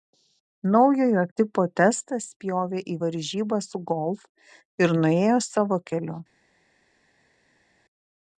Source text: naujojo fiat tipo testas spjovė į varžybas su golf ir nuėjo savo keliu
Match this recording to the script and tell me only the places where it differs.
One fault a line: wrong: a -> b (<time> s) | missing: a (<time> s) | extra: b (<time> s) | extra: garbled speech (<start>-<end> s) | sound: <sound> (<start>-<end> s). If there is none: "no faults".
missing: fiat (1.2 s)